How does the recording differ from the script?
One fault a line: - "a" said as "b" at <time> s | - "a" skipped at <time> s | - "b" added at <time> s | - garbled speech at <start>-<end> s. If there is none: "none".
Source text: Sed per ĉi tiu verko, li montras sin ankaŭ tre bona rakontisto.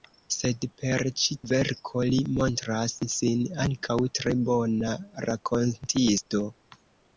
- "tiu" skipped at 1.4 s